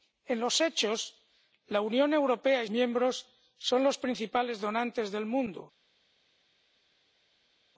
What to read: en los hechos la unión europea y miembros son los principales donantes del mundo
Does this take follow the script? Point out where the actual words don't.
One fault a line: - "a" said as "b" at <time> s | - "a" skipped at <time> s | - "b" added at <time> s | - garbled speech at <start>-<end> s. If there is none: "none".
none